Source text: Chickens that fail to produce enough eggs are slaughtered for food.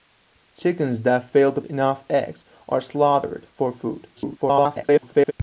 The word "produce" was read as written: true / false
false